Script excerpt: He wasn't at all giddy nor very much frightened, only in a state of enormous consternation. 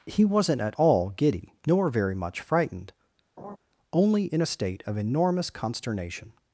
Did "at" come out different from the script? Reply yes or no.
no